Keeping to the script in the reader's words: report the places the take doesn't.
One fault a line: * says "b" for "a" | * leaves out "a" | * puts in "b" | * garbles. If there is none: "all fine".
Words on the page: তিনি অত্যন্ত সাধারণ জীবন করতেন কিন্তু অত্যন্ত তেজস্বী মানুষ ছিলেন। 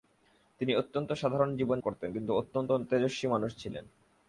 all fine